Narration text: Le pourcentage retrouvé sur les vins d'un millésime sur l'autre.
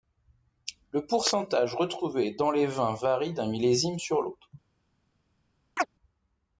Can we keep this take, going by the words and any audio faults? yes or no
no